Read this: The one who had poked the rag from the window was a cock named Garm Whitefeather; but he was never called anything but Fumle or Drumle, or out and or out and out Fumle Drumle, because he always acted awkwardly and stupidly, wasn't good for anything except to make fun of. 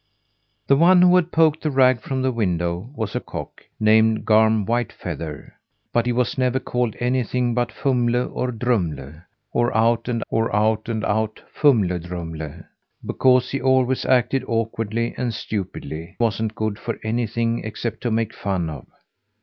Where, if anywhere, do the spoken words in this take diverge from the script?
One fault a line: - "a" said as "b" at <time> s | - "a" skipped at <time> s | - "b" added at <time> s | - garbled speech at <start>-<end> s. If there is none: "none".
none